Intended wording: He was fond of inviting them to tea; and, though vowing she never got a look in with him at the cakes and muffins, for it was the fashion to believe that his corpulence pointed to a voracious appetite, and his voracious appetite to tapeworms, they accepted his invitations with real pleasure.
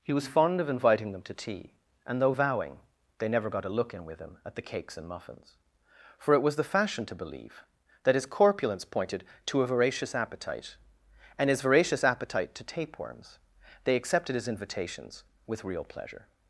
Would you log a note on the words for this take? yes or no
yes